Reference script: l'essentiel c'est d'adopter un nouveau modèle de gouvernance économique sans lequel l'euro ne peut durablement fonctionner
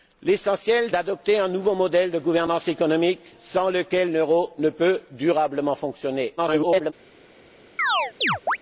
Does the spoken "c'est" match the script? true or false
false